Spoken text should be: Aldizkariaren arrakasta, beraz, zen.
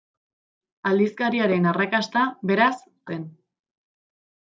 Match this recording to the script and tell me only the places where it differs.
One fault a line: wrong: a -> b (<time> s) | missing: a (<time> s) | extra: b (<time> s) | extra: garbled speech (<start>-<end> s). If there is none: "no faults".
no faults